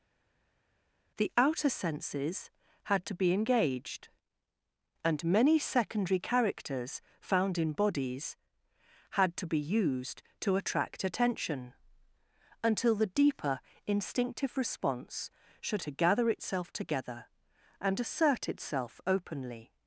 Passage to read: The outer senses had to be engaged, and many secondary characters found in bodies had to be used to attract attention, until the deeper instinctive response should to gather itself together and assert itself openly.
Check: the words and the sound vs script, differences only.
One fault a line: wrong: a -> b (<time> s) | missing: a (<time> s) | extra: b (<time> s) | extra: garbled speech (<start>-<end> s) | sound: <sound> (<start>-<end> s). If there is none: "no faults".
no faults